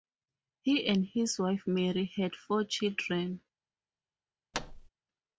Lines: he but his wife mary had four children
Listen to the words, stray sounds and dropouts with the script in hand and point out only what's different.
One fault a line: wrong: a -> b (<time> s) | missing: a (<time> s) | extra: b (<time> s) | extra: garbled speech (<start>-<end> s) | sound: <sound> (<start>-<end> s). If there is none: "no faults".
wrong: but -> and (0.9 s)
sound: thud (4.5-4.9 s)